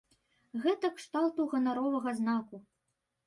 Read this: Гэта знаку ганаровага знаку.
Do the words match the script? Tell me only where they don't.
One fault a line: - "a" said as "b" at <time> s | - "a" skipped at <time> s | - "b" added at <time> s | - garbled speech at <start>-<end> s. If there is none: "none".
- "знаку" said as "кшталту" at 0.9 s